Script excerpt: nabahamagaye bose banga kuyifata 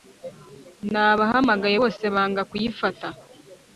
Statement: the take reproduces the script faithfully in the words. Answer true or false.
true